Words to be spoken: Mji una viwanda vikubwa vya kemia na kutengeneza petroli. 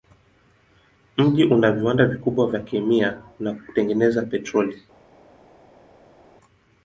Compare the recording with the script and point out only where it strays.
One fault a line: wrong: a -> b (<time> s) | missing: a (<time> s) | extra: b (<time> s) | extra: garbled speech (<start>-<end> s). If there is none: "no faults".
no faults